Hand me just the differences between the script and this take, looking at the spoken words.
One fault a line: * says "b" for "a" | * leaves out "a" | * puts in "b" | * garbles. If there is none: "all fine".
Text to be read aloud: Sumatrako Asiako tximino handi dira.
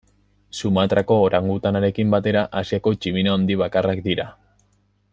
* puts in "orangutanarekin batera"
* puts in "bakarrak"